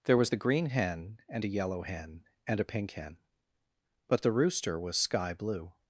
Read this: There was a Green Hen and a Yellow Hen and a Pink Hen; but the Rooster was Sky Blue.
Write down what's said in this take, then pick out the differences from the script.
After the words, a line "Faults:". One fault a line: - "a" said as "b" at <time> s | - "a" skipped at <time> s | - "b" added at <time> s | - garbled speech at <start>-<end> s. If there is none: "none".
There was the Green Hen and a Yellow Hen and a Pink Hen; but the Rooster was Sky Blue.
Faults:
- "a" said as "the" at 0.3 s